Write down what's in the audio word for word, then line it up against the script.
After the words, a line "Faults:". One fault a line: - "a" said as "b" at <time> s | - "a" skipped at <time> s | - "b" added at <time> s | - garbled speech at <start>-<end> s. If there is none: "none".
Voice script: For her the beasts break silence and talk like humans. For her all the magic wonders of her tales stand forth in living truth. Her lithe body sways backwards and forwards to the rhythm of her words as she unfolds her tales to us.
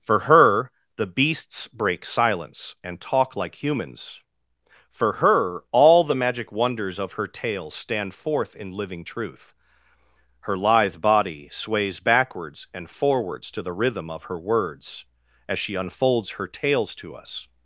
For her the beasts break silence and talk like humans. For her all the magic wonders of her tales stand forth in living truth. Her lithe body sways backwards and forwards to the rhythm of her words as she unfolds her tales to us.
Faults:
none